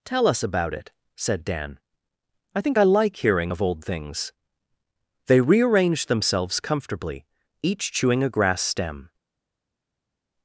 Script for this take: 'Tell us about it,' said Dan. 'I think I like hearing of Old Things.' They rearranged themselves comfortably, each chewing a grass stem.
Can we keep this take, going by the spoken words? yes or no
yes